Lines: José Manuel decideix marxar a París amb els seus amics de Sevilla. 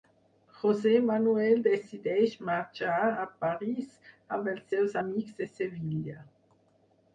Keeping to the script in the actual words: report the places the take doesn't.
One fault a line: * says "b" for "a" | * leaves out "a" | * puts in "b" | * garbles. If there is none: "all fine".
all fine